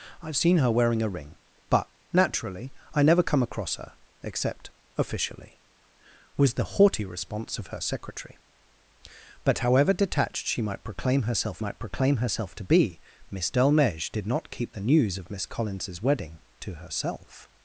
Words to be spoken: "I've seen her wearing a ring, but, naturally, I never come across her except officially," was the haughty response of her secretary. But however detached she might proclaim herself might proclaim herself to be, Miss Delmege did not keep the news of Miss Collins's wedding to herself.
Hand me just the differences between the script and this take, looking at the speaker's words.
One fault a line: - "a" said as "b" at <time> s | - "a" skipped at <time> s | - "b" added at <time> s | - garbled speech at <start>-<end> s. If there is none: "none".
none